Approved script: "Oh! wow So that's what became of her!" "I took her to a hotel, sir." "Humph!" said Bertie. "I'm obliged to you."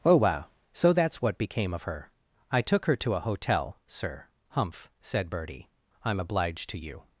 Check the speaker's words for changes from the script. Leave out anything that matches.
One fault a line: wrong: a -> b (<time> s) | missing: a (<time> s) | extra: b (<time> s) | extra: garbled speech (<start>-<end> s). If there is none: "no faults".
no faults